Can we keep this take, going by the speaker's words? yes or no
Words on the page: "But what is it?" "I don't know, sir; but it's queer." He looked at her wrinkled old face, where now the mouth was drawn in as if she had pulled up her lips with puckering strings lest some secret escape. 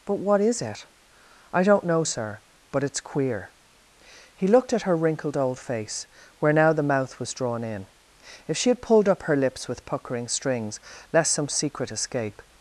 no